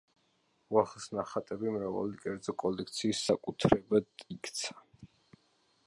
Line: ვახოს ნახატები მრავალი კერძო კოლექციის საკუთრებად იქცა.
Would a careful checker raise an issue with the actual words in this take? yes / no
no